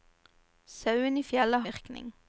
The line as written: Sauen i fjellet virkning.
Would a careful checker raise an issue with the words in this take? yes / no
no